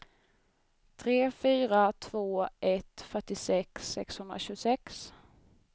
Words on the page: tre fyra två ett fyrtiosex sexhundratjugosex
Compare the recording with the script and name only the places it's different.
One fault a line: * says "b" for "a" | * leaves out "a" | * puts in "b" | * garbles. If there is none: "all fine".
all fine